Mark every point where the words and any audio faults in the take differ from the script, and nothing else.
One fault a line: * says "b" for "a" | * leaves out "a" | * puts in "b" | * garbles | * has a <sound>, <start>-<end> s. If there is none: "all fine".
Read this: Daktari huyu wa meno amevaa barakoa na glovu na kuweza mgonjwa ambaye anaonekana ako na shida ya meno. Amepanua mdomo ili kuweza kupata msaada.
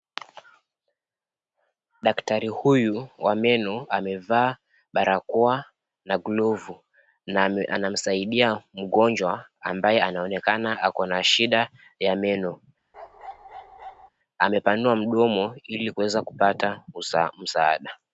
* says "anamsaidia" for "kuweza"
* has a bark, 12.9-14.1 s